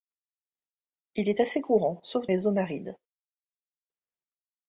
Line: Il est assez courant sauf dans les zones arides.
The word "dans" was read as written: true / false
false